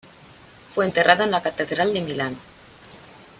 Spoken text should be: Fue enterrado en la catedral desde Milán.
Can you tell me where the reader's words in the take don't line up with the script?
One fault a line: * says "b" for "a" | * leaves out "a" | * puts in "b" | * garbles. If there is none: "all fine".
* says "de" for "desde"